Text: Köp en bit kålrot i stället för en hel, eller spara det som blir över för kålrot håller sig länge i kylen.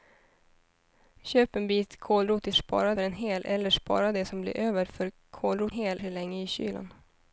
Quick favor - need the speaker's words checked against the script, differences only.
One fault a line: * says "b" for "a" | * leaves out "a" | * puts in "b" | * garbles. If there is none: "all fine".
* says "spara" for "stället"
* says "hel" for "håller"